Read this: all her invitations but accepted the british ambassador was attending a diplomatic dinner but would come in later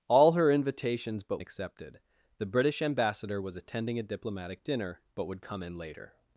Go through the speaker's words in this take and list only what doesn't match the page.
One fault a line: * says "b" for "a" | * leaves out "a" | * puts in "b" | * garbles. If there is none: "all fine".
all fine